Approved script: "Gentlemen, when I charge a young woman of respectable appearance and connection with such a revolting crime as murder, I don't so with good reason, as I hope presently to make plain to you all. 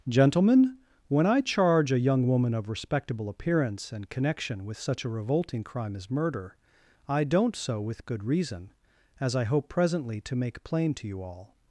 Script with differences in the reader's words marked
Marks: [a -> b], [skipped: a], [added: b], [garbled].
"Gentlemen, when I charge a young woman of respectable appearance and connection with such a revolting crime as murder, I don't so with good reason, as I hope presently to make plain to you all.